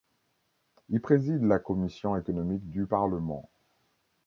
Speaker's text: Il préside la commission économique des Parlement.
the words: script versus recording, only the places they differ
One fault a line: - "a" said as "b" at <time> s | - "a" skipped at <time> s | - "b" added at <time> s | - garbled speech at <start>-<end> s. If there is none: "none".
- "des" said as "du" at 2.7 s